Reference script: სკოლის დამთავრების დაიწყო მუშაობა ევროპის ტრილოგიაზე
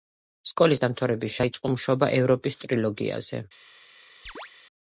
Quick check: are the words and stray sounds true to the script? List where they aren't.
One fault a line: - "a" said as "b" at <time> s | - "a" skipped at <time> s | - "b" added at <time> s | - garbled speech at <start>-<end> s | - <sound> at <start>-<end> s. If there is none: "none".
- chirp at 4.3-4.5 s